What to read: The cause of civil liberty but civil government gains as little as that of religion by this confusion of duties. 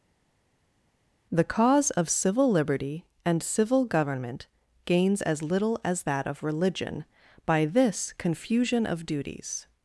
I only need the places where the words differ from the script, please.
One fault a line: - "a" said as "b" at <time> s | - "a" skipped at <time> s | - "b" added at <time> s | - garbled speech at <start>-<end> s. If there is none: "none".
- "but" said as "and" at 3.2 s